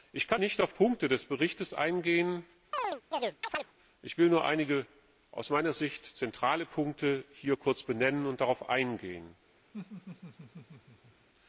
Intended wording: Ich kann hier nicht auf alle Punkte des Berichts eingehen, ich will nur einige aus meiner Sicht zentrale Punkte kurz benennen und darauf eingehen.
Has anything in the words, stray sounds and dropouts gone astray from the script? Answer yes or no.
yes